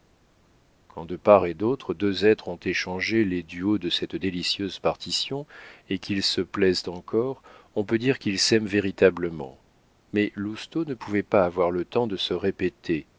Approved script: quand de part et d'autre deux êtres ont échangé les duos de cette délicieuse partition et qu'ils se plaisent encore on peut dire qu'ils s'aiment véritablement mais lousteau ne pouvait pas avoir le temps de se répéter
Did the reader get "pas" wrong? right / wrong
right